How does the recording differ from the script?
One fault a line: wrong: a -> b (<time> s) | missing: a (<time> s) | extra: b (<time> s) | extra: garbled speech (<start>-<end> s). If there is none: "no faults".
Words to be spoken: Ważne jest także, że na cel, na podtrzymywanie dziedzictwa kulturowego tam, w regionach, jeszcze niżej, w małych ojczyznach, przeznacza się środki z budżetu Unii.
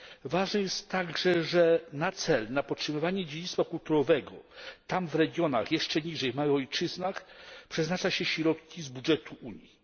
no faults